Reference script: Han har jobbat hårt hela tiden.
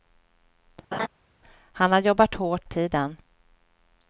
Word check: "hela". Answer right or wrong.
wrong